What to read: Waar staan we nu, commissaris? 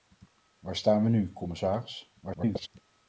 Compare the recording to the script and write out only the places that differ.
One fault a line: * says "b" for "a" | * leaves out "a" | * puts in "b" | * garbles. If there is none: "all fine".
* garbles